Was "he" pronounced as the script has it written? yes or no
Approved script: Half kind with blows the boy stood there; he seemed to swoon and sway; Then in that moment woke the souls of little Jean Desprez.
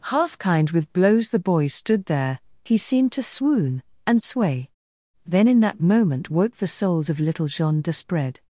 yes